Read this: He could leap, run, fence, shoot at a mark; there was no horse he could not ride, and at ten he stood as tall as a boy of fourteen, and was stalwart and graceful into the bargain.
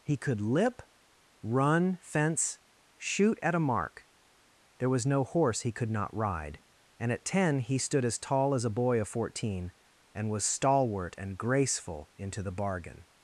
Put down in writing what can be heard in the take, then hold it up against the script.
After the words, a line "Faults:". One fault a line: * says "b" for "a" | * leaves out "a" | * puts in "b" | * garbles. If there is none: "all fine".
He could lip, run, fence, shoot at a mark; there was no horse he could not ride, and at ten he stood as tall as a boy of fourteen, and was stalwart and graceful into the bargain.
Faults:
* says "lip" for "leap"